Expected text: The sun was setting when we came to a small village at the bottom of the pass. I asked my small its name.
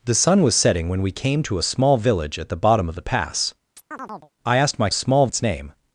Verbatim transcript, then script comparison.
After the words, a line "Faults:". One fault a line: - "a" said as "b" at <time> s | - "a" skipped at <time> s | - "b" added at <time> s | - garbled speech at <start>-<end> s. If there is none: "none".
The sun was setting when we came to a small village at the bottom of the pass. I asked my small its name.
Faults:
none